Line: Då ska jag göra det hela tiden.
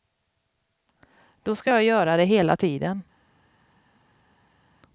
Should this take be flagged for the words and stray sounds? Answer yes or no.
no